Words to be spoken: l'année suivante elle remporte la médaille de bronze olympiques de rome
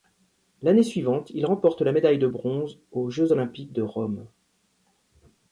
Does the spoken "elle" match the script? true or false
false